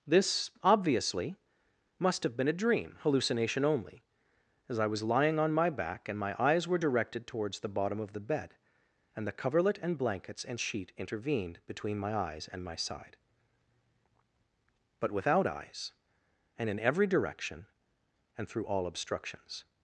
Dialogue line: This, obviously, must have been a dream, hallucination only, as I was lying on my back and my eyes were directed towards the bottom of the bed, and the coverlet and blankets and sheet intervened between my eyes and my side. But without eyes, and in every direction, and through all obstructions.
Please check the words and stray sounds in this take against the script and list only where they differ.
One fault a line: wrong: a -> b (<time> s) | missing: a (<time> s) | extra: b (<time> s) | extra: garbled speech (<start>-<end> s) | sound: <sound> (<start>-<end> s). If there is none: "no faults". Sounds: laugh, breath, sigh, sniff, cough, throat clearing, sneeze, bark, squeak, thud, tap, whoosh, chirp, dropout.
no faults